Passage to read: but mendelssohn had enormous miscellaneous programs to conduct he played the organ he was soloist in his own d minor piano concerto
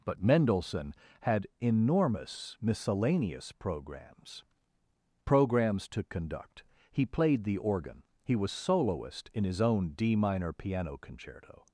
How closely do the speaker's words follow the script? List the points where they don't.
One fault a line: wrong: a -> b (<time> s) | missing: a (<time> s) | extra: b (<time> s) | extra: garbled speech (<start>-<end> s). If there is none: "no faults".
extra: programs (5.3 s)